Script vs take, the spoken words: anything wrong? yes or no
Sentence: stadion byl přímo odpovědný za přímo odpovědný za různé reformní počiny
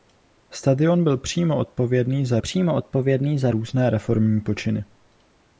no